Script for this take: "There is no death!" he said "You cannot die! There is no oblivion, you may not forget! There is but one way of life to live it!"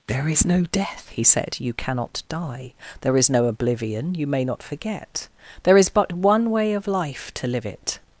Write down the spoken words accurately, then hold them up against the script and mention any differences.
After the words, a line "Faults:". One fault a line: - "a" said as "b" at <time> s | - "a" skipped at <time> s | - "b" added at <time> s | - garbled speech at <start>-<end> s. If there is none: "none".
"There is no death!" he said "You cannot die! There is no oblivion, you may not forget! There is but one way of life to live it!"
Faults:
none